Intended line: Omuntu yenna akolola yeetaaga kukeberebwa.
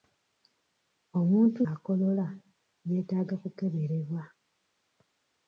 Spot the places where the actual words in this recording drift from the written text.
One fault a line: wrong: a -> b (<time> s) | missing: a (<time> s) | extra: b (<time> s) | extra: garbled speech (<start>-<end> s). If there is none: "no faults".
missing: yenna (1.6 s)